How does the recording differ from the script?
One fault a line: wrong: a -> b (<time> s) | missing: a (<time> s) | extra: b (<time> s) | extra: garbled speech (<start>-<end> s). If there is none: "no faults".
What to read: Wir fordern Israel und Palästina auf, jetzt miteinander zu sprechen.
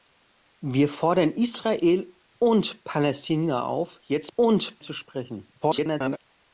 wrong: miteinander -> und (4.4 s)
extra: garbled speech (5.6-6.2 s)